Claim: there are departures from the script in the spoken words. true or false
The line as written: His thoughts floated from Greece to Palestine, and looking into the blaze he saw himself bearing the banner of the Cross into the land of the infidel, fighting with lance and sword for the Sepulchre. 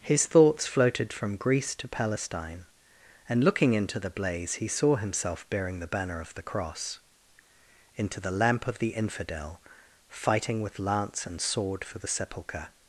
true